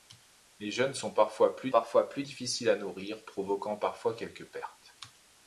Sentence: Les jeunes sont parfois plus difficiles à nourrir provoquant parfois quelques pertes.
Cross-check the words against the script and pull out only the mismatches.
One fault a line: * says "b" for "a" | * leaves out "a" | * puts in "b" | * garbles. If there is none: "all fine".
* puts in "parfois plus"